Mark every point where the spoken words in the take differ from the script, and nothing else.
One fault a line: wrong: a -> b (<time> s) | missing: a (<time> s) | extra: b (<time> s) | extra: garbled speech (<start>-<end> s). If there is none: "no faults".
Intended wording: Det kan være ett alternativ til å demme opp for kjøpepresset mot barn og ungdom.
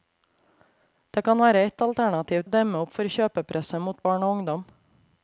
missing: til (2.5 s)